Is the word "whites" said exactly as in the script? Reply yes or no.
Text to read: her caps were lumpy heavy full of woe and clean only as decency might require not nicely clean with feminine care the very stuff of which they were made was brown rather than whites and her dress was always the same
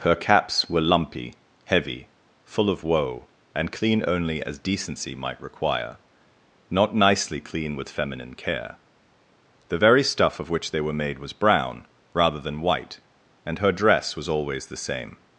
no